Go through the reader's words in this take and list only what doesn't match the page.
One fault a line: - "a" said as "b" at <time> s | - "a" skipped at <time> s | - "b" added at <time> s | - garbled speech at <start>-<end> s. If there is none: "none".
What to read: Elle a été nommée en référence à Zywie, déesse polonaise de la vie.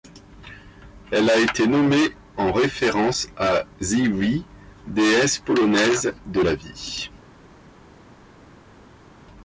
none